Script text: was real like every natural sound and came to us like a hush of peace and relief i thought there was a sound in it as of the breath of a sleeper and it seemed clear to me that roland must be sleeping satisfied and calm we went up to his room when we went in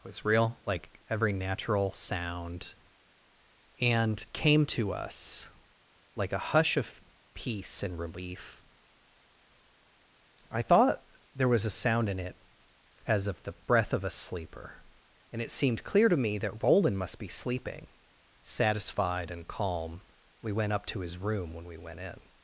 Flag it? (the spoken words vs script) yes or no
no